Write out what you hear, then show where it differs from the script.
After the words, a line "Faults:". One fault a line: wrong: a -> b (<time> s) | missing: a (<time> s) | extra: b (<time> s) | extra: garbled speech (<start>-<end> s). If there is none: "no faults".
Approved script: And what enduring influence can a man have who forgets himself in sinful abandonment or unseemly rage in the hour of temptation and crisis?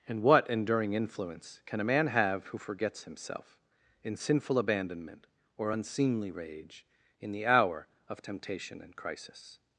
And what enduring influence can a man have who forgets himself in sinful abandonment or unseemly rage in the hour of temptation and crisis?
Faults:
no faults